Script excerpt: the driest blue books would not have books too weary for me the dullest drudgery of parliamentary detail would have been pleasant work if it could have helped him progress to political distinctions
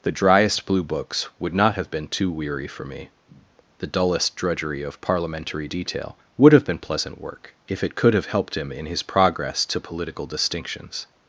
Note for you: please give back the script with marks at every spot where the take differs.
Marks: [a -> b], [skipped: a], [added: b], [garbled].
the driest blue books would not have [books -> been] too weary for me the dullest drudgery of parliamentary detail would have been pleasant work if it could have helped him [added: in his] progress to political distinctions